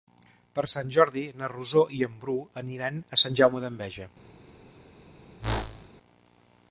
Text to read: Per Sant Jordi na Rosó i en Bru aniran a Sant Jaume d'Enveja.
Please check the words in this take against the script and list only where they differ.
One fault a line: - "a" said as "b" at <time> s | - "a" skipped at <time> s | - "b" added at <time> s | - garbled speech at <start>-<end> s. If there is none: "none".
none